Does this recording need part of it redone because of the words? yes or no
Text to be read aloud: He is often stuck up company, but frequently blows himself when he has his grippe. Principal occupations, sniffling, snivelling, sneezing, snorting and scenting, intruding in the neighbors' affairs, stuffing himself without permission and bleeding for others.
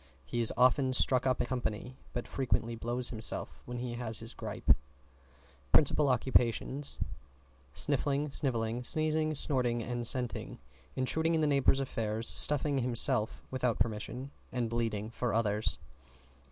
no